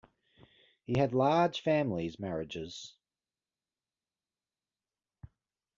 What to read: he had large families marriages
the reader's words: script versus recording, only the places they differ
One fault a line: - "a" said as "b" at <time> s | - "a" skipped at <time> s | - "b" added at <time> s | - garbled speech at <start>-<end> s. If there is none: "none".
none